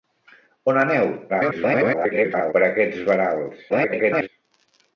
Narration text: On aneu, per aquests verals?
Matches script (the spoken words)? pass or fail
fail